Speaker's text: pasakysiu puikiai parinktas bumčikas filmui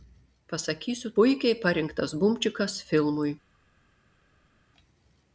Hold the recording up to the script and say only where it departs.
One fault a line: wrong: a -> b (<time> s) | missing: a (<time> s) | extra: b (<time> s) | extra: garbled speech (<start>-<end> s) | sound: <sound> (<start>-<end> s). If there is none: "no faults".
no faults